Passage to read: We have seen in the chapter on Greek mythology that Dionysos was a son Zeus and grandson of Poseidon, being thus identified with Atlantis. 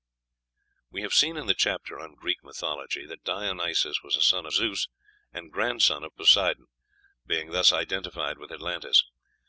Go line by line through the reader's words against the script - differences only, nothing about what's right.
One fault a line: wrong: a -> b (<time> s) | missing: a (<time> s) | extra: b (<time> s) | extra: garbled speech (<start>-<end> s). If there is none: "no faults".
no faults